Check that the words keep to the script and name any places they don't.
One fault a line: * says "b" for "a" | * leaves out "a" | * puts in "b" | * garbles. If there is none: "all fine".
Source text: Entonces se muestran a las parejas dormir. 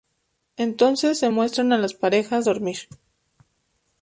all fine